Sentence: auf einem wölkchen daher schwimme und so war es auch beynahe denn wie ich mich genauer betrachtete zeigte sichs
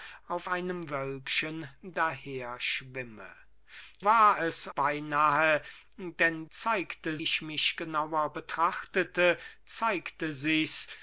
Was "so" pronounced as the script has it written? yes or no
no